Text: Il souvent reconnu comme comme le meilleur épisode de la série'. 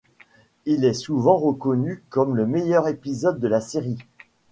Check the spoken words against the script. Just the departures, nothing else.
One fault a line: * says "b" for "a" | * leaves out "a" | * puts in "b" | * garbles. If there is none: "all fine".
* puts in "est"
* leaves out "comme"